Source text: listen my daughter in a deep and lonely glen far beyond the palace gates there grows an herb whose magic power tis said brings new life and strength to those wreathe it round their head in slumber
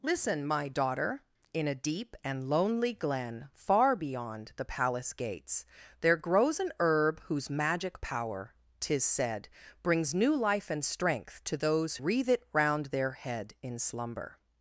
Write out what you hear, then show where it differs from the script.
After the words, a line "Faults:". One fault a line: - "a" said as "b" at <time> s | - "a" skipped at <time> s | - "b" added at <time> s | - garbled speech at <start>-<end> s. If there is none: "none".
listen my daughter in a deep and lonely glen far beyond the palace gates there grows an herb whose magic power tis said brings new life and strength to those wreathe it round their head in slumber
Faults:
none